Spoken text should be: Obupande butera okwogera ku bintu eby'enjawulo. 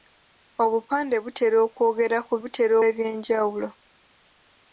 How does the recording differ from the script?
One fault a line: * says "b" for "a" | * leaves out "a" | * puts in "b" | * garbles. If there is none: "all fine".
* says "butera" for "bintu"